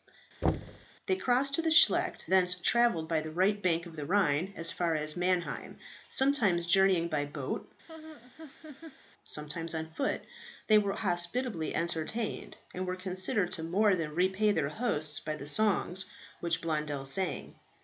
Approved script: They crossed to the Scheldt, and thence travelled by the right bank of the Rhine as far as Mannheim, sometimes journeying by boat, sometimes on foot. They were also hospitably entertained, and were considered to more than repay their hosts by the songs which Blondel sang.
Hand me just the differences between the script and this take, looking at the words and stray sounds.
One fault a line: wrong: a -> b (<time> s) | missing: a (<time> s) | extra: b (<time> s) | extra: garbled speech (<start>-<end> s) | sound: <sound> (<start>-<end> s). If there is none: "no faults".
sound: thud (0.4-0.9 s)
missing: and (2.3 s)
sound: laugh (7.9-9.0 s)
missing: also (10.9 s)